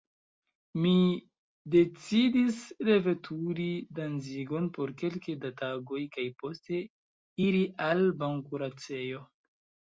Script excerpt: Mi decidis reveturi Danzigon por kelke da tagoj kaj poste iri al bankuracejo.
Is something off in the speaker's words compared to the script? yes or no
no